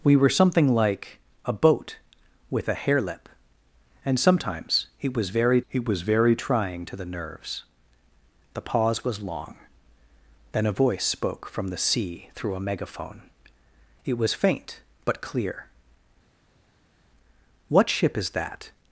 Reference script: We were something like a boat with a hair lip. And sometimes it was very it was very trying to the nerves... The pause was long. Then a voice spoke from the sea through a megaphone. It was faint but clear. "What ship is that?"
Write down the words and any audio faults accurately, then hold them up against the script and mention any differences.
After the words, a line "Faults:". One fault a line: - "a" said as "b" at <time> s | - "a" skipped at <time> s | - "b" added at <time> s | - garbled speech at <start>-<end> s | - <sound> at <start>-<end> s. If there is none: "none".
We were something like a boat with a hair lip. And sometimes it was very it was very trying to the nerves... The pause was long. Then a voice spoke from the sea through a megaphone. It was faint but clear. "What ship is that?"
Faults:
none